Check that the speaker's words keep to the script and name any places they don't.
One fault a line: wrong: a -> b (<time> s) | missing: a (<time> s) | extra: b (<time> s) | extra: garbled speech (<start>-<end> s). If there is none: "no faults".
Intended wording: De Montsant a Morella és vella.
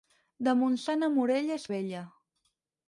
no faults